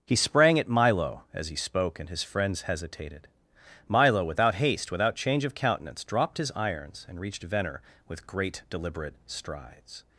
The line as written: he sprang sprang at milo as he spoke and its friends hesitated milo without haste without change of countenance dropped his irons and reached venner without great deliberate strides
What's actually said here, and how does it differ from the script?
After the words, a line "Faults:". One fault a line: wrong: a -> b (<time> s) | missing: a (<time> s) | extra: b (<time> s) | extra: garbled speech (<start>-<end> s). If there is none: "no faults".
he sprang at milo as he spoke and his friends hesitated milo without haste without change of countenance dropped his irons and reached venner with great deliberate strides
Faults:
missing: sprang (0.6 s)
wrong: its -> his (2.1 s)
wrong: without -> with (8.1 s)